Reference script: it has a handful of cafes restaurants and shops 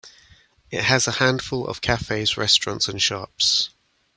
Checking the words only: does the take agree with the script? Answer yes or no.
yes